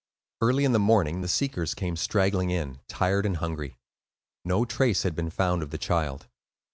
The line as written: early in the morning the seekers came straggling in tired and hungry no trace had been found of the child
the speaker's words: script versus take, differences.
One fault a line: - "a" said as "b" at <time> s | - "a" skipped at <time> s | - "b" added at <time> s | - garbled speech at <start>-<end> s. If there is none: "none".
none